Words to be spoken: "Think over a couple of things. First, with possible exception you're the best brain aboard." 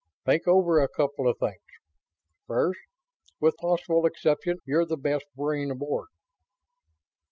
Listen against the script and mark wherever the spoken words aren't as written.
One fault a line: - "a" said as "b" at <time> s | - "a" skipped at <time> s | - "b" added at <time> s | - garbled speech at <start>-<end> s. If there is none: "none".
none